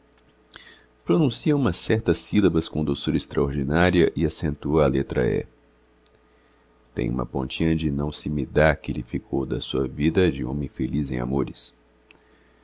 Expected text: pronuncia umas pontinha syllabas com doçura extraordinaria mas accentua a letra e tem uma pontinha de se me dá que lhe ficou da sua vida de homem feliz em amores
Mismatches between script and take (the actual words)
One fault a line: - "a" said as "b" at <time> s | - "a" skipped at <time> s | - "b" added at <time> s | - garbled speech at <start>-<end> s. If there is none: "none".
- "pontinha" said as "certas" at 1.8 s
- "mas" said as "e" at 4.1 s
- "não" added at 7.9 s